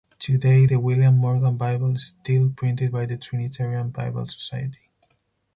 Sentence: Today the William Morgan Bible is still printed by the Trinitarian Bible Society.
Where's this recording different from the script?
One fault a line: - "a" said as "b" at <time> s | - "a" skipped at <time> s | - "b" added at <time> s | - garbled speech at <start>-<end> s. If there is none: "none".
none